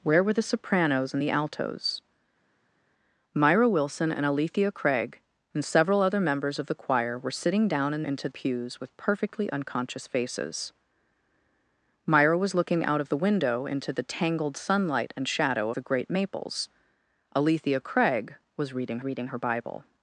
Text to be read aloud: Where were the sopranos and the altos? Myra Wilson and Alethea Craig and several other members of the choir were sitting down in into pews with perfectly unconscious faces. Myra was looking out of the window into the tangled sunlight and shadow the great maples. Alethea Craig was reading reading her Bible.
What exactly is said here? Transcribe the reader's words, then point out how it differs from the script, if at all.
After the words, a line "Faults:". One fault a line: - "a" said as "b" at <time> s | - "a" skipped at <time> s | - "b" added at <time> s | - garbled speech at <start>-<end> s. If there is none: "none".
Where were the sopranos and the altos? Myra Wilson and Alethea Craig and several other members of the choir were sitting down in into pews with perfectly unconscious faces. Myra was looking out of the window into the tangled sunlight and shadow the great maples. Alethea Craig was reading reading her Bible.
Faults:
none